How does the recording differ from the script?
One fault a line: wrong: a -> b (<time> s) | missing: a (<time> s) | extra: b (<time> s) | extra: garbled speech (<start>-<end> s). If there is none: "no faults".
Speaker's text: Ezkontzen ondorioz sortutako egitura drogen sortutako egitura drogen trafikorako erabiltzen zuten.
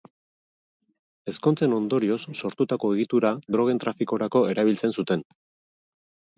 missing: sortutako egitura drogen (3.9 s)